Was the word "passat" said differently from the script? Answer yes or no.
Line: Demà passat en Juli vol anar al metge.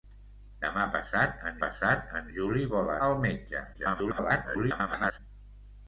no